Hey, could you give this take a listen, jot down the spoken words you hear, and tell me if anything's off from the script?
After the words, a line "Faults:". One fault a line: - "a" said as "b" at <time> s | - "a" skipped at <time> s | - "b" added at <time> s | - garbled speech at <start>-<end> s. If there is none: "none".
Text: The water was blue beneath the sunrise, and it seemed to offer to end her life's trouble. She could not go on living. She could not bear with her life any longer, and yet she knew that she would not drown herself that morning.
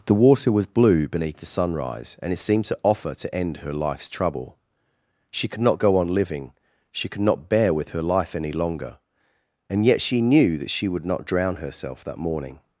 The water was blue beneath the sunrise, and it seemed to offer to end her life's trouble. She could not go on living. She could not bear with her life any longer, and yet she knew that she would not drown herself that morning.
Faults:
none